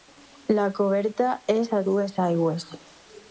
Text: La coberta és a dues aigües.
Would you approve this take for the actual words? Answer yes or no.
yes